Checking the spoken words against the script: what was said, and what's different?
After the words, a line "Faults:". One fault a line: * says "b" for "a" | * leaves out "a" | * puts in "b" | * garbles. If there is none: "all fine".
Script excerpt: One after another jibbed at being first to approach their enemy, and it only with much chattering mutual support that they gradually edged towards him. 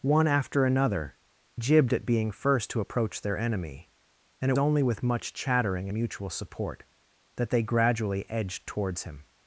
One after another jibbed at being first to approach their enemy, and it only with much chattering mutual support that they gradually edged towards him.
Faults:
all fine